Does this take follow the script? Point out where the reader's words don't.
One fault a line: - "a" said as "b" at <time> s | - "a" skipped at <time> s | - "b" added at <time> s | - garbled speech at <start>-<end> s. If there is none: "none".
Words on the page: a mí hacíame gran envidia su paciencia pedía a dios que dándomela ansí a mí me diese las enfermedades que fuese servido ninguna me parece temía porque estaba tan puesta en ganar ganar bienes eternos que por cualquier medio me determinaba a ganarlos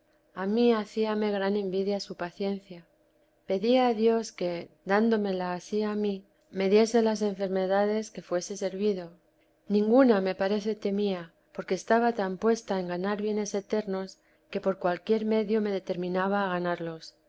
- "ganar" skipped at 13.2 s